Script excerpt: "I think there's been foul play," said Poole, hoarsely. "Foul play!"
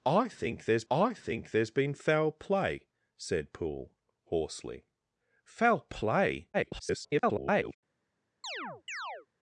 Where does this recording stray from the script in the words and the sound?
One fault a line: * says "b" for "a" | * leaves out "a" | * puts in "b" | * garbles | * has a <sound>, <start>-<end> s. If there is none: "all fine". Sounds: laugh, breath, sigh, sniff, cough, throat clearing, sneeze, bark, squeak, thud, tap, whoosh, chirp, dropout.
* puts in "I think there's"
* garbles
* has a chirp, 8.4-9.3 s